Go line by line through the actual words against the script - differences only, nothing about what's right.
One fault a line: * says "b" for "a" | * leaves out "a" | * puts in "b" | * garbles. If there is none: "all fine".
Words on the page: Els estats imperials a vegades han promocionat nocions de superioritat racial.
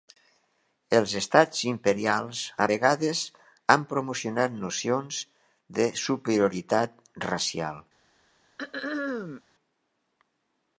all fine